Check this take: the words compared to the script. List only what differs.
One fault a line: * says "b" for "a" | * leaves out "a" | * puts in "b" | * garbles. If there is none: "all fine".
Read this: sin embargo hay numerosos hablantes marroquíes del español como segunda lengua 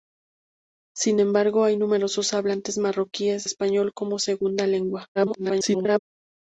* leaves out "del"
* garbles